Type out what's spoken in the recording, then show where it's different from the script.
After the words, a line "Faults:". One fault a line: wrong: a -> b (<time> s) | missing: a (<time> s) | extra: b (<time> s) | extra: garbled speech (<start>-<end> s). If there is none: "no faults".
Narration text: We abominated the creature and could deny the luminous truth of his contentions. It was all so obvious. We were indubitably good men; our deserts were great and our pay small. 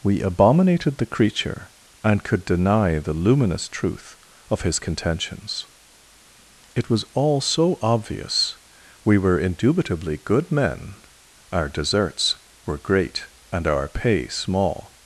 We abominated the creature and could deny the luminous truth of his contentions. It was all so obvious. We were indubitably good men; our deserts were great and our pay small.
Faults:
no faults